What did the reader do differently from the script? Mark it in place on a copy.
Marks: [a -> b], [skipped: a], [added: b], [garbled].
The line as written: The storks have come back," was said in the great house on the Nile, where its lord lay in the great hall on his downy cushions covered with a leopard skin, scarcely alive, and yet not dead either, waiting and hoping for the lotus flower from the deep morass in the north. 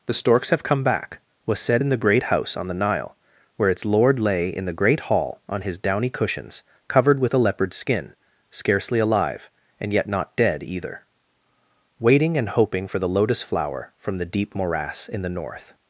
The storks have come back," was said in the great house on the Nile, where its lord lay in the great hall on his downy cushions covered with a leopard skin, scarcely alive, and yet not dead either, waiting and hoping for the lotus flower from the deep morass in the north.